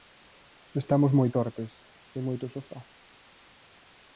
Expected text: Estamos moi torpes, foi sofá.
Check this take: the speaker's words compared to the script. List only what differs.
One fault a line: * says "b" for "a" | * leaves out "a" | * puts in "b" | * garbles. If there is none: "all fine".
* puts in "moito"